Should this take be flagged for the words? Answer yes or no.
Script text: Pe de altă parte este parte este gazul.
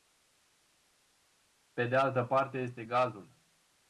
yes